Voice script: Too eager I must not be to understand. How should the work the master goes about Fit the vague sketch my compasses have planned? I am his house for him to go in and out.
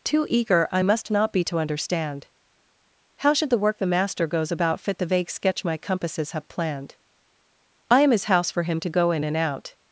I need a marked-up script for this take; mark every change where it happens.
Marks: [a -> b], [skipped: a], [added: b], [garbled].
Too eager I must not be to understand. How should the work the master goes about Fit the vague sketch my compasses have planned? I am his house for him to go in and out.